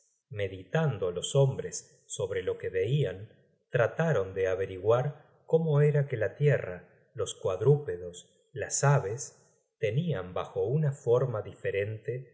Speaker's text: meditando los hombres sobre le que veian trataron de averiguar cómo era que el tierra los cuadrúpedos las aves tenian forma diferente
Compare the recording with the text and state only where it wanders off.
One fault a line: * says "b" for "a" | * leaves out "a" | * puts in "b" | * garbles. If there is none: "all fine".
* says "lo" for "le"
* says "la" for "el"
* puts in "bajo una"